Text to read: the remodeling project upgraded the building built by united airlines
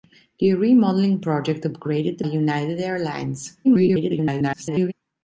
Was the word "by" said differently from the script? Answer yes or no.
yes